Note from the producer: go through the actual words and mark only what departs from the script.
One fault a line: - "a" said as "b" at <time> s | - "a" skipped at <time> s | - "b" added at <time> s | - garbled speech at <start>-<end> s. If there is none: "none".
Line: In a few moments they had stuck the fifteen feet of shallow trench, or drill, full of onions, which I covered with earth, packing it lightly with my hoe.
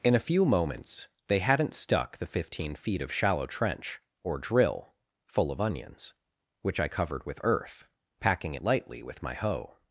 - "had" said as "hadn't" at 1.4 s